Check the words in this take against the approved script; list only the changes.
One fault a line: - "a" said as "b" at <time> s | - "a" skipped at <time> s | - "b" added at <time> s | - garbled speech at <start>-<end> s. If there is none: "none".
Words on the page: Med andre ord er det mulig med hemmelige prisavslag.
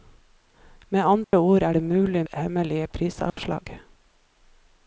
- "med" skipped at 2.2 s